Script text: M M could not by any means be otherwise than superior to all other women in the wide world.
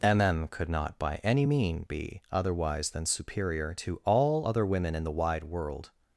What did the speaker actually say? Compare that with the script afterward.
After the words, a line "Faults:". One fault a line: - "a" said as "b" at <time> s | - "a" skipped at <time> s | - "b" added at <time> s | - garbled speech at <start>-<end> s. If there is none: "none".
M M could not by any mean be otherwise than superior to all other women in the wide world.
Faults:
- "means" said as "mean" at 1.4 s